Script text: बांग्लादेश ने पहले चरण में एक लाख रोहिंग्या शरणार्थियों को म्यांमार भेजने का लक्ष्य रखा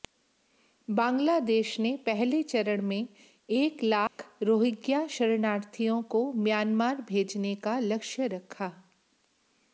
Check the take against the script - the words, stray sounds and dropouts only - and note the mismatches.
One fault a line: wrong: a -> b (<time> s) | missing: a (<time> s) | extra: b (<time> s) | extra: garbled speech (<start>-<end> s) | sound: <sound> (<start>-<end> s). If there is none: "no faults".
sound: dropout (4.1-4.2 s)